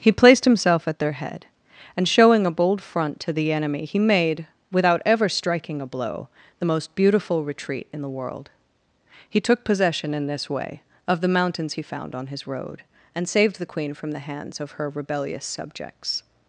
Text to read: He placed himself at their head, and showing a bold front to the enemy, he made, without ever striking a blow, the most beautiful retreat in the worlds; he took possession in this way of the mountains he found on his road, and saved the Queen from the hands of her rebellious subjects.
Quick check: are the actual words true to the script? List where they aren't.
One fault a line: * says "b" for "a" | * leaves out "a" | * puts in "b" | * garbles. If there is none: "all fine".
* says "world" for "worlds"